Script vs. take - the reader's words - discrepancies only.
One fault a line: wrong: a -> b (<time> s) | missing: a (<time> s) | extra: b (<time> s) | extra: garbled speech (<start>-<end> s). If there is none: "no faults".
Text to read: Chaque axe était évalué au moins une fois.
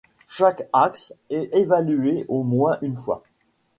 wrong: était -> est (1.3 s)